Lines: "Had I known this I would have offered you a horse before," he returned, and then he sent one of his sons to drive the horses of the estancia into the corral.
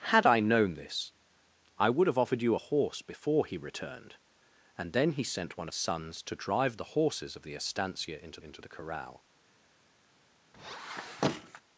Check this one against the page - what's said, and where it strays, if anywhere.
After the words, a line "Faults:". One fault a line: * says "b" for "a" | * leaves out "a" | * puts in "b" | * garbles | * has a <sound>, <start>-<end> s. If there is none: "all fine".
"Had I known this I would have offered you a horse before," he returned, and then he sent one of sons to drive the horses of the estancia into into the corral.
Faults:
* leaves out "his"
* puts in "into"
* has a squeak, 10.5-11.6 s